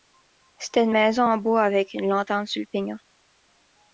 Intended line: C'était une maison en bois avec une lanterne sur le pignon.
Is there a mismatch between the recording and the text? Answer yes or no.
no